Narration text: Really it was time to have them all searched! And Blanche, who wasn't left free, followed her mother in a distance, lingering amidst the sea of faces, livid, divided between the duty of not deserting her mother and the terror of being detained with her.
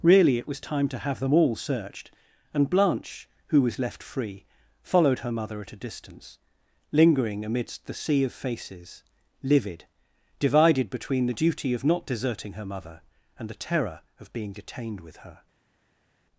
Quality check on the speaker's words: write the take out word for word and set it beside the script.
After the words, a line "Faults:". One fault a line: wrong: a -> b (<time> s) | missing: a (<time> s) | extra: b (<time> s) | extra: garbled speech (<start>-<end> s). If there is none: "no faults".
Really it was time to have them all searched! And Blanche, who was left free, followed her mother at a distance, lingering amidst the sea of faces, livid, divided between the duty of not deserting her mother and the terror of being detained with her.
Faults:
wrong: wasn't -> was (3.6 s)
wrong: in -> at (5.6 s)